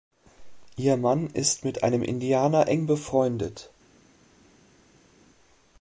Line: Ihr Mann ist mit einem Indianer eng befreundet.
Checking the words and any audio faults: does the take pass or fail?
pass